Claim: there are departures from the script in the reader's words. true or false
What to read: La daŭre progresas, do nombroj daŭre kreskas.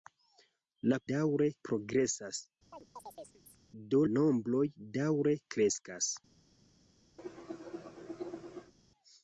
false